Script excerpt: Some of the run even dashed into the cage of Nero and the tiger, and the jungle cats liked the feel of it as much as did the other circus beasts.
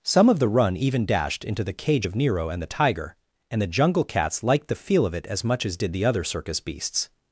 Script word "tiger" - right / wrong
right